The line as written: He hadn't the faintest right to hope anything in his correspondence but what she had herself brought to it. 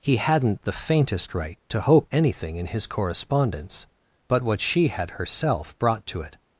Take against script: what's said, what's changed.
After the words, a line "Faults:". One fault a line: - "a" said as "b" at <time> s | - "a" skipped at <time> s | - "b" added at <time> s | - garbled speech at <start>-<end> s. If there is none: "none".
He hadn't the faintest right to hope anything in his correspondence but what she had herself brought to it.
Faults:
none